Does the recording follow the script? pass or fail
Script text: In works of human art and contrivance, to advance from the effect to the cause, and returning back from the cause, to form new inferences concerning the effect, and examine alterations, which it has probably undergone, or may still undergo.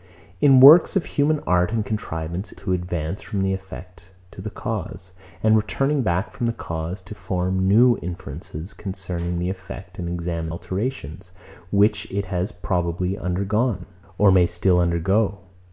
pass